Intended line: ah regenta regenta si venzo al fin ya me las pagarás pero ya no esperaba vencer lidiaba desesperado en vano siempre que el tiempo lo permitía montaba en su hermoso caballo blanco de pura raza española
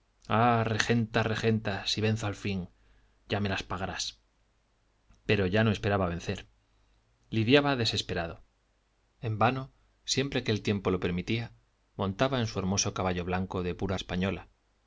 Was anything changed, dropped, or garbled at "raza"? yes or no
yes